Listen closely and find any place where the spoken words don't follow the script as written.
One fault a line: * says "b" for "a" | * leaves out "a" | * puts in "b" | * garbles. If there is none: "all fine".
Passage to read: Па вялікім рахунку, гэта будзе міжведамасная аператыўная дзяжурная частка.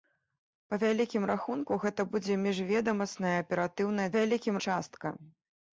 * says "вялікім" for "дзяжурная"